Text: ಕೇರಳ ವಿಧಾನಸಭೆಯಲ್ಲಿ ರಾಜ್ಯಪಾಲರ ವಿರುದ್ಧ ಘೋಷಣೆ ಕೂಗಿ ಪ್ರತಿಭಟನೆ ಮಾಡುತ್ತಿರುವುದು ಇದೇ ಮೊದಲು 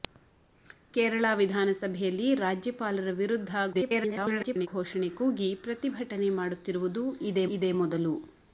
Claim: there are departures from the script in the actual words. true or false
true